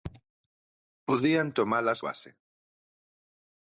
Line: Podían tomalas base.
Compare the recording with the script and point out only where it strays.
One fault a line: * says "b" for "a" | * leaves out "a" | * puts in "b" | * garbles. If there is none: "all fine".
all fine